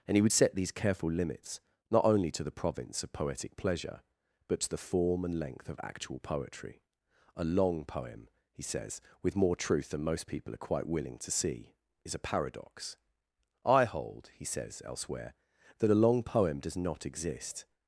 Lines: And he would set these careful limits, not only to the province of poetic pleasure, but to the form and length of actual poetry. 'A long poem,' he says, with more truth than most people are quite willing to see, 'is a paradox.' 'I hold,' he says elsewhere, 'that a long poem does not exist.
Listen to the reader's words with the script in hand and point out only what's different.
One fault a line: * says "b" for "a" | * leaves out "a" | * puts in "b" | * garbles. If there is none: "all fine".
all fine